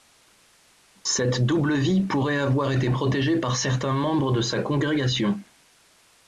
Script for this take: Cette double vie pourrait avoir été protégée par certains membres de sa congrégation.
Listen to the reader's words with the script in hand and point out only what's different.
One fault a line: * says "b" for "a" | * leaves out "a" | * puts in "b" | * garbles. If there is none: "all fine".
all fine